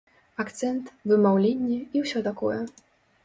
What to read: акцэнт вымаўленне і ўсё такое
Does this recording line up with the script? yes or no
yes